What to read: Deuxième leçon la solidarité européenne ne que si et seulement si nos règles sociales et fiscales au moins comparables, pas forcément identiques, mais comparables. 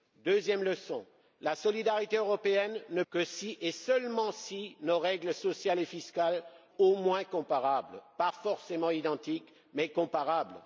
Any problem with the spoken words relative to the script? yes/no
no